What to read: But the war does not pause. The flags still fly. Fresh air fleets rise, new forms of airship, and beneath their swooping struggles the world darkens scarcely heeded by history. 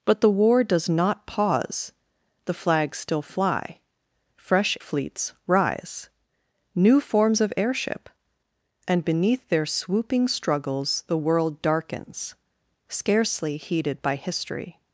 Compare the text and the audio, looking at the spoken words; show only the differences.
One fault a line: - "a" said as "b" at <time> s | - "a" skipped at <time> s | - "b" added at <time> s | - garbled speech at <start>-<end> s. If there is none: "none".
- "air" skipped at 4.8 s